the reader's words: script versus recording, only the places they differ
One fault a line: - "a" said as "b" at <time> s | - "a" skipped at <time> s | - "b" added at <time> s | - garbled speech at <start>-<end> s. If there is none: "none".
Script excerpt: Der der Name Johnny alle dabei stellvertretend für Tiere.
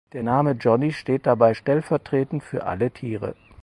- "der" skipped at 0.2 s
- "alle" said as "steht" at 0.9 s
- "alle" added at 2.6 s